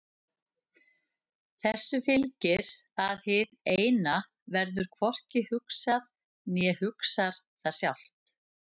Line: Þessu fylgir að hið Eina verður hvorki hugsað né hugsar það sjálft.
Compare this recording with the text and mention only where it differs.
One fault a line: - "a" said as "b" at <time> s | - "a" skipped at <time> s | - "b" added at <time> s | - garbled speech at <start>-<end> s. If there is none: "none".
none